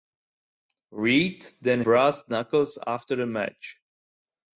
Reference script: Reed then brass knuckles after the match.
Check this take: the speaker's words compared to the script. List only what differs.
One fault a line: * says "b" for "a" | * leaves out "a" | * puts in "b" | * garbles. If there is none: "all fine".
all fine